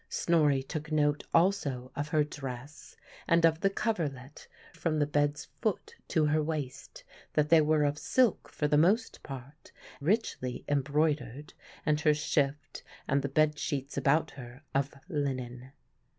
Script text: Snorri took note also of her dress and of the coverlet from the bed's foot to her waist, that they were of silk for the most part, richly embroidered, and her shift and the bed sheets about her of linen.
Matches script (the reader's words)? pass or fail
pass